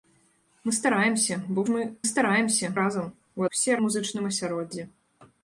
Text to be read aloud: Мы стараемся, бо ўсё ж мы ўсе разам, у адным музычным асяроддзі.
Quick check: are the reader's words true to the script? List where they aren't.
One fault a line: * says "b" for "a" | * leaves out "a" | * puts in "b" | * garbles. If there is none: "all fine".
* leaves out "ўсё"
* says "стараемся" for "ўсе"
* says "ўсе" for "адным"